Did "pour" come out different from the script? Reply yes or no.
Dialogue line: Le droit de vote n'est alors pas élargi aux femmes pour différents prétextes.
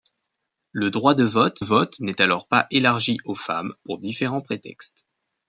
no